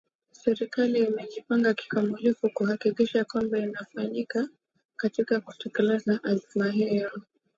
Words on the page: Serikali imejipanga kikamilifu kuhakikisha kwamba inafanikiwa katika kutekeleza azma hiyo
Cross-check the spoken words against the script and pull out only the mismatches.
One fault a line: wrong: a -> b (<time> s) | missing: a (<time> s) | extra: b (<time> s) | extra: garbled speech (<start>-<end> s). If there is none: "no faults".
no faults